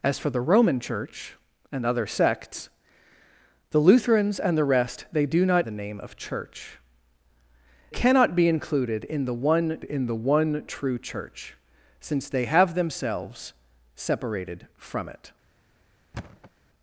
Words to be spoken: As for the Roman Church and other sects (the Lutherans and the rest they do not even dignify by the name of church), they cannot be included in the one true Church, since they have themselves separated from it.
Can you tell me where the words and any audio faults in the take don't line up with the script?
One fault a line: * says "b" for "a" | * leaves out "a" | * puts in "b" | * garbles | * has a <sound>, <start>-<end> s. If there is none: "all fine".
* leaves out "even dignify by"
* leaves out "they"
* puts in "in the one"
* has a thud, 16.1-16.5 s